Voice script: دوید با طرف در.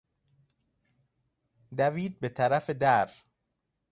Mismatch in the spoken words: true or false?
true